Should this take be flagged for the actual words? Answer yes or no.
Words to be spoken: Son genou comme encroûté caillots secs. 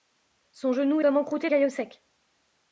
no